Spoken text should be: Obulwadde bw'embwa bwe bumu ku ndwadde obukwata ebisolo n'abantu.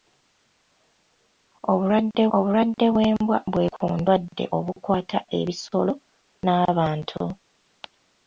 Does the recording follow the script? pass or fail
fail